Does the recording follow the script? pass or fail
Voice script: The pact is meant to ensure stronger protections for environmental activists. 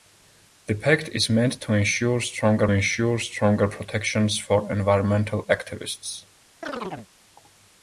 fail